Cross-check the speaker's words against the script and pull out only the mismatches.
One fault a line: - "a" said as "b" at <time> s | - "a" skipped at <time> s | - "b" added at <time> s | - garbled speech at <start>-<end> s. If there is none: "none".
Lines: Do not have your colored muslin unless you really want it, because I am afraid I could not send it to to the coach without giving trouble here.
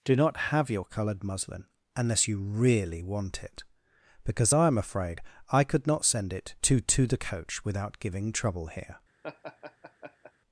none